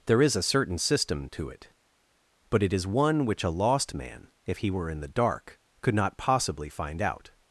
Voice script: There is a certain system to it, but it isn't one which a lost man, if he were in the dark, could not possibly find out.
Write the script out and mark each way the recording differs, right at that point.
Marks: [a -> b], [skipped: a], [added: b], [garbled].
There is a certain system to it, but it [isn't -> is] one which a lost man, if he were in the dark, could not possibly find out.